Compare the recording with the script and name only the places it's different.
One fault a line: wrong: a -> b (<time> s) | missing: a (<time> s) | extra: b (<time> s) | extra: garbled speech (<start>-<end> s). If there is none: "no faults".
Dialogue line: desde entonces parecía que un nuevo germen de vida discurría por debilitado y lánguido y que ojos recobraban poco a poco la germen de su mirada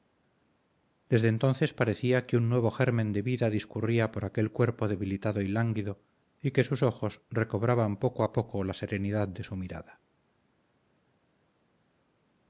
extra: aquel cuerpo (4.2 s)
extra: sus (6.6 s)
wrong: germen -> serenidad (8.7 s)